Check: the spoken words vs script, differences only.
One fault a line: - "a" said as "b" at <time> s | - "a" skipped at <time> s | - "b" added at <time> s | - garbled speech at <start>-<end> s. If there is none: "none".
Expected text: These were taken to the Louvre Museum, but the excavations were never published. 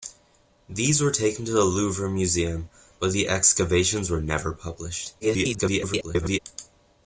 - garbled speech at 5.2-6.4 s